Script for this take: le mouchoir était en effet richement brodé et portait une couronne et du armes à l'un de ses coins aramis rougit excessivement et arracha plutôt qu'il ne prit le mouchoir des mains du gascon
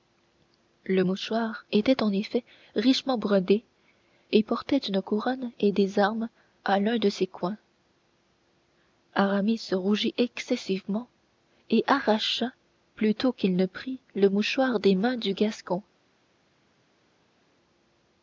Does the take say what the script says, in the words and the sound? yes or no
no